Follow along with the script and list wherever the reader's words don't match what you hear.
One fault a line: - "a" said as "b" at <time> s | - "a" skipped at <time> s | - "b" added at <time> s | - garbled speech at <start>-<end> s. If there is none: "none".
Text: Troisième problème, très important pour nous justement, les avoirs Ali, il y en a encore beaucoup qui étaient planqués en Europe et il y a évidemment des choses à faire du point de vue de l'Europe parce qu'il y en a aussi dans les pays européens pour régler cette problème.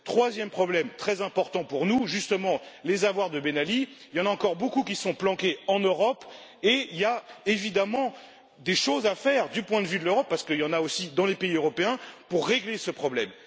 - "de Ben" added at 3.3 s
- "étaient" said as "sont" at 5.0 s
- "cette" said as "ce" at 12.8 s